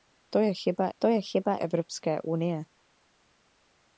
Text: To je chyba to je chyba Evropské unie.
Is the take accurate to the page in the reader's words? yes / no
yes